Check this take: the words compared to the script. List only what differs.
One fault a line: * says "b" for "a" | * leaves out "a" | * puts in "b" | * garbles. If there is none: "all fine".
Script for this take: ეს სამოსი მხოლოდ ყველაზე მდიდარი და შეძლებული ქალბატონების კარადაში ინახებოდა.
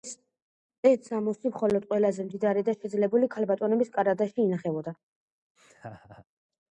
all fine